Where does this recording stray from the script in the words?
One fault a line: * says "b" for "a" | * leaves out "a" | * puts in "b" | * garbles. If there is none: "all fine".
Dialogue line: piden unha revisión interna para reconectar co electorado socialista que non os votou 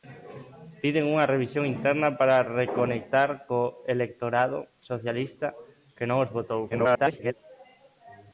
* garbles